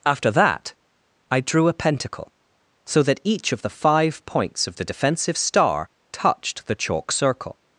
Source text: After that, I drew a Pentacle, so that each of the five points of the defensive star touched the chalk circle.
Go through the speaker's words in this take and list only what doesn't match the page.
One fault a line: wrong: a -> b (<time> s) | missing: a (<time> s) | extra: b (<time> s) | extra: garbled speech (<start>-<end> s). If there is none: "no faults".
no faults